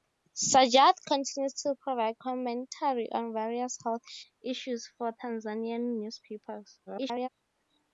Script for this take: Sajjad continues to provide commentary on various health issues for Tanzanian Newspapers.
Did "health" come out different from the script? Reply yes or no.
no